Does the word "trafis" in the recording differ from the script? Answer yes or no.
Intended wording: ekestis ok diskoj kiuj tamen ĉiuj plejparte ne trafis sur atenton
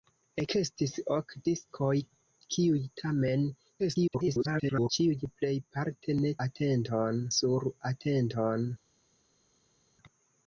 yes